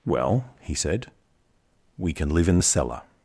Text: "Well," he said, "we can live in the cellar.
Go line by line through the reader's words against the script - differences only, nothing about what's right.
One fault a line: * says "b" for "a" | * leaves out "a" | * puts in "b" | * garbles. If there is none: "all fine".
all fine